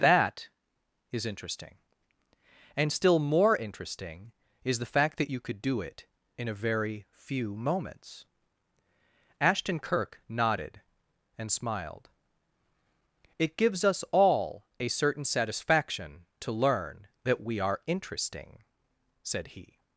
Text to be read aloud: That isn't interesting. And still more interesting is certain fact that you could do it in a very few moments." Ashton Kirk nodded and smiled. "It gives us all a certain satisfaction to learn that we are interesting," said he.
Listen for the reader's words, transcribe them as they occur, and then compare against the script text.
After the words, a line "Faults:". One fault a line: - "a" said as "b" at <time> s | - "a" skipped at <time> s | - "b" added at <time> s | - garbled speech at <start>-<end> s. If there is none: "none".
That is interesting. And still more interesting is the fact that you could do it in a very few moments." Ashton Kirk nodded and smiled. "It gives us all a certain satisfaction to learn that we are interesting," said he.
Faults:
- "isn't" said as "is" at 1.1 s
- "certain" said as "the" at 4.8 s